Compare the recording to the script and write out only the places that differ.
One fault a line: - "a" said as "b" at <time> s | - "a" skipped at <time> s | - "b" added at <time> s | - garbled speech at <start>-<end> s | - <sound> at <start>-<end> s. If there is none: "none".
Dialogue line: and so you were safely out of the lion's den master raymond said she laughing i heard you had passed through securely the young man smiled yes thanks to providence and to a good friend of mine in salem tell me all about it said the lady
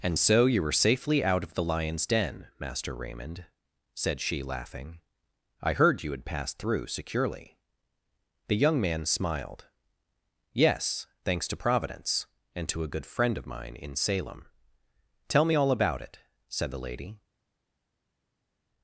none